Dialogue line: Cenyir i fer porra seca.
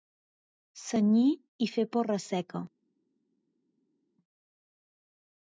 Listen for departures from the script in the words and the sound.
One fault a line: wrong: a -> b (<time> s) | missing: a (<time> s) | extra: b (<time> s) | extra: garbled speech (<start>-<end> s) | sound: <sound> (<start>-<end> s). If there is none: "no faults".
no faults